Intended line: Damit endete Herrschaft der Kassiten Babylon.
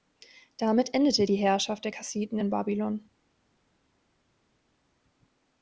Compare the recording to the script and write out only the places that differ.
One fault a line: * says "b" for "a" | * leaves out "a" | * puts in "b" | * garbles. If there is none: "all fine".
* puts in "die"
* puts in "in"